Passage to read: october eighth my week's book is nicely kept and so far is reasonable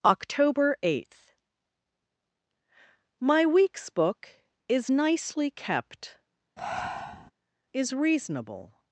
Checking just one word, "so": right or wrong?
wrong